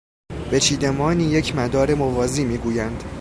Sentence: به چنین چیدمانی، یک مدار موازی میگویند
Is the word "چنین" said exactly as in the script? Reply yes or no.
no